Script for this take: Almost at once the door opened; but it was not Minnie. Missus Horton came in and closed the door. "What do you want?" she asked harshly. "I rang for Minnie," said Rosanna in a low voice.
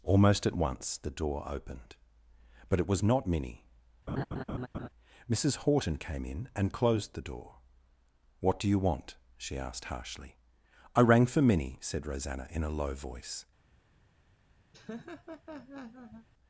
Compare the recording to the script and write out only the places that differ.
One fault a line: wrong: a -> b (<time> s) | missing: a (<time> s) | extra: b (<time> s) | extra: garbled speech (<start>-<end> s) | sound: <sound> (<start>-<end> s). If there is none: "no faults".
sound: laugh (4.1-4.9 s)
sound: laugh (14.7-16.3 s)